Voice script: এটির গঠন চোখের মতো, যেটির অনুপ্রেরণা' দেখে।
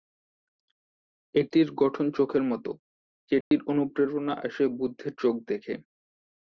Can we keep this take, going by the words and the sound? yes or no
no